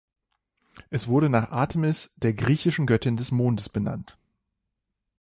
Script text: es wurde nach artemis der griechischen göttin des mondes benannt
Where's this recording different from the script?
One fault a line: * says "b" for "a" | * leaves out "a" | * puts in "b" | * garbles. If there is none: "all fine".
all fine